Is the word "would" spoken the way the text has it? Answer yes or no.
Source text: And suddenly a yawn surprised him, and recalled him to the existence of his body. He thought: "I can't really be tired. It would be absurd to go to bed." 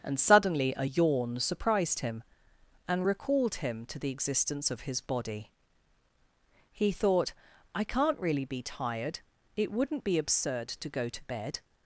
no